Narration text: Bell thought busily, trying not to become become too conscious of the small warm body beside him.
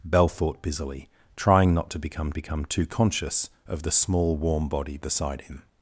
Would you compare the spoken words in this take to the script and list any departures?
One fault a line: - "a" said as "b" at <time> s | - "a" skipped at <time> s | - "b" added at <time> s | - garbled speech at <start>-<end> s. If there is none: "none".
none